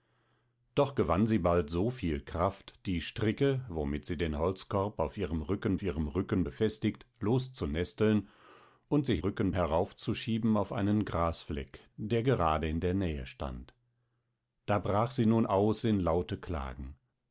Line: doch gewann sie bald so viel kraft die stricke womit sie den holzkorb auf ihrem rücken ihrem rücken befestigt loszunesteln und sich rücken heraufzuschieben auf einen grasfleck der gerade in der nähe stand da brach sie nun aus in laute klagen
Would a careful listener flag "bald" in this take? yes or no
no